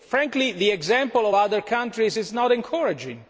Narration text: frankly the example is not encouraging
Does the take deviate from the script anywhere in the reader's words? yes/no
yes